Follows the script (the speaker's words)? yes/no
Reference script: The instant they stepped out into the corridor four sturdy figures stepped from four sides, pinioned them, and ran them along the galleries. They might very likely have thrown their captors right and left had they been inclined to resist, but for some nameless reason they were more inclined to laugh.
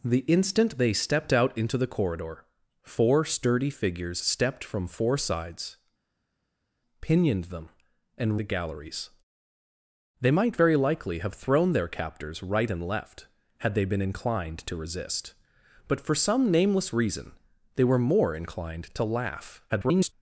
no